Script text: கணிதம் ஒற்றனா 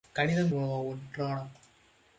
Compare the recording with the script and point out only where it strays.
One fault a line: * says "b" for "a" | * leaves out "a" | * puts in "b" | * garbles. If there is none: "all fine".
all fine